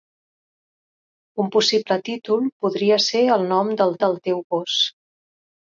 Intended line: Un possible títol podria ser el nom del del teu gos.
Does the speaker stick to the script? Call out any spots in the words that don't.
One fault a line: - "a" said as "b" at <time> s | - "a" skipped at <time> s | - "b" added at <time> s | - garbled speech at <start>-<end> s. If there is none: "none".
none